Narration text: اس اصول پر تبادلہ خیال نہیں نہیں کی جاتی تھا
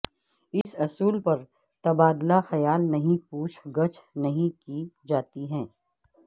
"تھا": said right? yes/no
no